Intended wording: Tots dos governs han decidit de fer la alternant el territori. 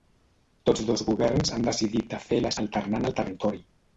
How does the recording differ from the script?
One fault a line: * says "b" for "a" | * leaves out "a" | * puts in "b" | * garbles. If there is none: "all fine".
all fine